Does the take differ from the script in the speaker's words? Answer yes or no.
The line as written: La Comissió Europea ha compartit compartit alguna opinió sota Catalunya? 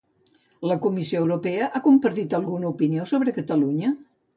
yes